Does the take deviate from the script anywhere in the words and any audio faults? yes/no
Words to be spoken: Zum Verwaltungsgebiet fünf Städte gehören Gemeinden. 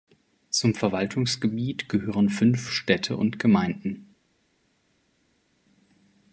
yes